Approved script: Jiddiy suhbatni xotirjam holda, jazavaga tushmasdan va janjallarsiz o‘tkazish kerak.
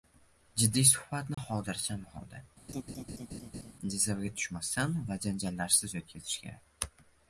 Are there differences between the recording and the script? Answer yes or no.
no